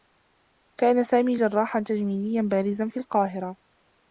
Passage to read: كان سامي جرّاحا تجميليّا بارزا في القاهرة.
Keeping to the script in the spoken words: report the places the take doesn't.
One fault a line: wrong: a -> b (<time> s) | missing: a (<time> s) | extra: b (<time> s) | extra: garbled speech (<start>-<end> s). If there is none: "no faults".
no faults